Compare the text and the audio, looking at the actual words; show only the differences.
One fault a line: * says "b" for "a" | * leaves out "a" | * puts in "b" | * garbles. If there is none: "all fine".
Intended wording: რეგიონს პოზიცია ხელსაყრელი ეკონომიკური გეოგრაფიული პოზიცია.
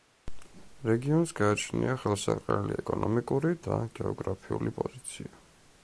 * says "გააჩნია" for "პოზიცია"
* puts in "და"